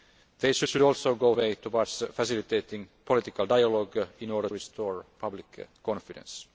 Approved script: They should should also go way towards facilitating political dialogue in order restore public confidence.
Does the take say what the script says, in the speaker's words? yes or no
yes